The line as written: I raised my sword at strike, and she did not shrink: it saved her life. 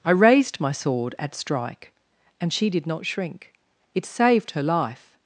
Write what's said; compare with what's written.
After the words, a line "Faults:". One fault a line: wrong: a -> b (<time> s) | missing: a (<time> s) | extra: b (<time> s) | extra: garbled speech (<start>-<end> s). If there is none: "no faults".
I raised my sword at strike, and she did not shrink: it saved her life.
Faults:
no faults